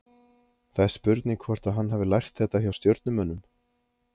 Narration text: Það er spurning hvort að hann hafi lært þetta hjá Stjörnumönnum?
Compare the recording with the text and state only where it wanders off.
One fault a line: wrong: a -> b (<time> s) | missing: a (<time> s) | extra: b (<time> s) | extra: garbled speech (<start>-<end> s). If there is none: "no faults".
no faults